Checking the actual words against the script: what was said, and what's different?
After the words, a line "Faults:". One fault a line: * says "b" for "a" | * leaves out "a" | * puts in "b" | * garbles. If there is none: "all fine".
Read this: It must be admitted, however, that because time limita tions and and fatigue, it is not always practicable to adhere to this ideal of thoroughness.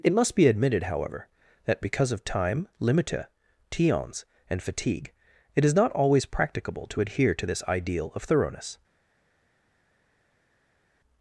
It must be admitted, however, that because of time limita tions and fatigue, it is not always practicable to adhere to this ideal of thoroughness.
Faults:
* puts in "of"
* leaves out "and"